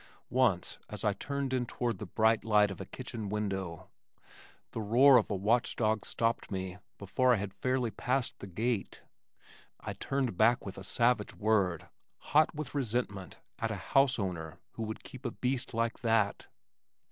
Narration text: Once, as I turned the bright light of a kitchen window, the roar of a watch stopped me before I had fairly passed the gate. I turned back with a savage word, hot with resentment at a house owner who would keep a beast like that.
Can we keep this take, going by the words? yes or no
no